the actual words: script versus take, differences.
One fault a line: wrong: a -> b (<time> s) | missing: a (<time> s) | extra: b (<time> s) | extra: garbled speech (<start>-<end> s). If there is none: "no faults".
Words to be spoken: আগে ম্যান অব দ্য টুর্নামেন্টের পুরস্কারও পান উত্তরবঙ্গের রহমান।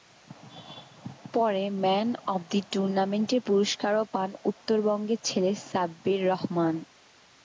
wrong: আগে -> পরে (1.3 s)
extra: ছেলে সাব্বির (5.2 s)